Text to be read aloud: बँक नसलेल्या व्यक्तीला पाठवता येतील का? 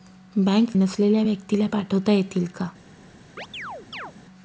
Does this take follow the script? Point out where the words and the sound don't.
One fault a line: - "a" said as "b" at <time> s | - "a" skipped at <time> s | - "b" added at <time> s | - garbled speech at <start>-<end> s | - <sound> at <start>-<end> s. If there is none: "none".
- chirp at 3.4-4.1 s